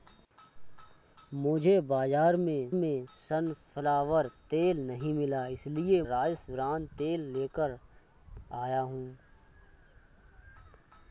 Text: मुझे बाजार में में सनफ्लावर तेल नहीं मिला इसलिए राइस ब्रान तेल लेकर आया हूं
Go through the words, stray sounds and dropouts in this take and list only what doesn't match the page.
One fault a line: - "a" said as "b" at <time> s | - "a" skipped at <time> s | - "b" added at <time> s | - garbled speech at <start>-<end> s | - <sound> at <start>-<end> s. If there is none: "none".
none